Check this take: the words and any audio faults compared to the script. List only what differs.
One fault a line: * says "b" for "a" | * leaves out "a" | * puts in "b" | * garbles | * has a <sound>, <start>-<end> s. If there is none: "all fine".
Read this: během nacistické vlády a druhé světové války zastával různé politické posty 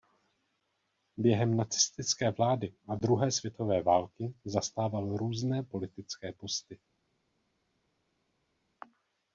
all fine